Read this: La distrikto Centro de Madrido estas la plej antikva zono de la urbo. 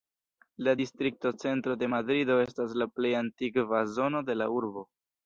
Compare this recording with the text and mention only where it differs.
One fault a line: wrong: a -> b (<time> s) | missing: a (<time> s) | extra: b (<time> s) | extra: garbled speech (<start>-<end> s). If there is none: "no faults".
no faults